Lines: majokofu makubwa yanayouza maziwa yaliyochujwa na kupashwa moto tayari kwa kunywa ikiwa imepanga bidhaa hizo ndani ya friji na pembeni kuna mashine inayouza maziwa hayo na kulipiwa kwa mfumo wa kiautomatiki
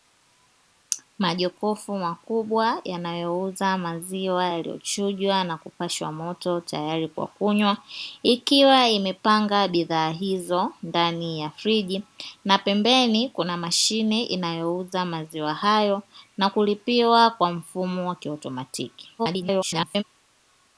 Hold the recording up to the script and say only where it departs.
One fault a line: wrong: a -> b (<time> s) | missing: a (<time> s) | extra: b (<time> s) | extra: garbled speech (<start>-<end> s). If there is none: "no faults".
extra: garbled speech (19.2-20.0 s)